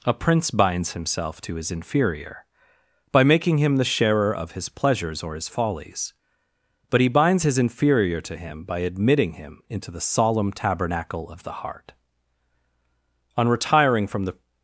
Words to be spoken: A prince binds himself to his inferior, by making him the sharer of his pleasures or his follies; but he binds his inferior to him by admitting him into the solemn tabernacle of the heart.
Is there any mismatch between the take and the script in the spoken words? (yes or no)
yes